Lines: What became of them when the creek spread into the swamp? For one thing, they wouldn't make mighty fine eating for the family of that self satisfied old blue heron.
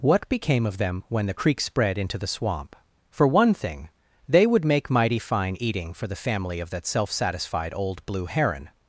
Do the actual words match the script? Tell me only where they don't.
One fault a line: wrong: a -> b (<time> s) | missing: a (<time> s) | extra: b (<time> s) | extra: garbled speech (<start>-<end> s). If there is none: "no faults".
wrong: wouldn't -> would (4.5 s)